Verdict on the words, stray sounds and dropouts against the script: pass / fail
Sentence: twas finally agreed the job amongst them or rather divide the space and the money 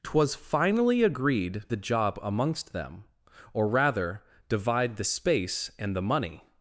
pass